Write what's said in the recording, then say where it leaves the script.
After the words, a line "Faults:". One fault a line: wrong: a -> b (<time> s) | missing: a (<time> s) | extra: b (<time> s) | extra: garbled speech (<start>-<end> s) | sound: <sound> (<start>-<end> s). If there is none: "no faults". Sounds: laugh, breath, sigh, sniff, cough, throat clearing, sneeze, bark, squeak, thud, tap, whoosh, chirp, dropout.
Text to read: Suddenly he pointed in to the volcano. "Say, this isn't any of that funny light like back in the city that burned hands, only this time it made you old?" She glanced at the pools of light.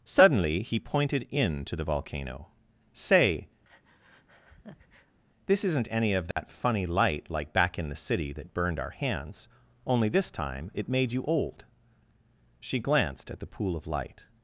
Suddenly he pointed in to the volcano. "Say, this isn't any of that funny light like back in the city that burned our hands, only this time it made you old?" She glanced at the pool of light.
Faults:
sound: breath (3.6-5.2 s)
sound: dropout (6.3-6.4 s)
extra: our (8.8 s)
wrong: pools -> pool (13.5 s)